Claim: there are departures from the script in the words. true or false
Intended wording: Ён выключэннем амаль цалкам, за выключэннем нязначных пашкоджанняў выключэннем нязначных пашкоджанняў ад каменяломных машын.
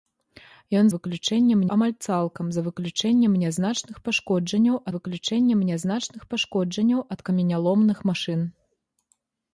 false